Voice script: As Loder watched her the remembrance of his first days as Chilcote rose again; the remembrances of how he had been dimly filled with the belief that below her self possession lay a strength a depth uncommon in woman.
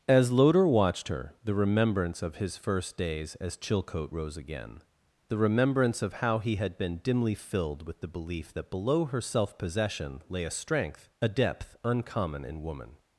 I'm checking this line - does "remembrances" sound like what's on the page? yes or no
no